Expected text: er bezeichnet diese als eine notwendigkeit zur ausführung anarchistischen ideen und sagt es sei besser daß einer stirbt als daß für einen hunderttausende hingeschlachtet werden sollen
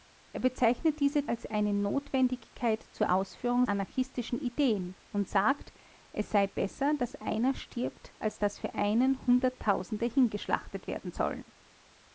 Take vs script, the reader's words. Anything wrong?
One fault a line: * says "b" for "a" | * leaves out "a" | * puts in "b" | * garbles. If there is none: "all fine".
all fine